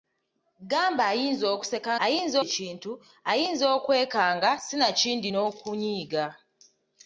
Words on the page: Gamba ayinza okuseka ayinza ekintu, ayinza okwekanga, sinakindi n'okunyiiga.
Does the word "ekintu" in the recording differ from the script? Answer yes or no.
no